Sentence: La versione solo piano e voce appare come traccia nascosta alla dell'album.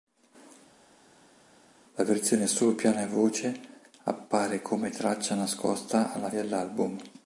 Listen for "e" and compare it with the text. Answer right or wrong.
right